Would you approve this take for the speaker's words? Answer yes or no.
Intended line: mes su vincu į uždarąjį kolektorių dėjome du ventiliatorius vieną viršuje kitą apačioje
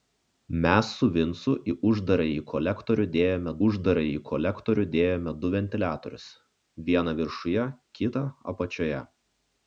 no